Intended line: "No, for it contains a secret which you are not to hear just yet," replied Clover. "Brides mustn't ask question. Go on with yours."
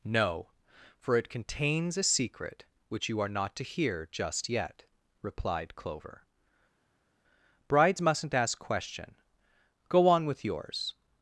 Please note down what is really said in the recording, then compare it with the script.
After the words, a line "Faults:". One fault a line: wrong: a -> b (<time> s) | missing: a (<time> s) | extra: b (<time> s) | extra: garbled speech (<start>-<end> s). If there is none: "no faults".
"No, for it contains a secret which you are not to hear just yet," replied Clover. "Brides mustn't ask question. Go on with yours."
Faults:
no faults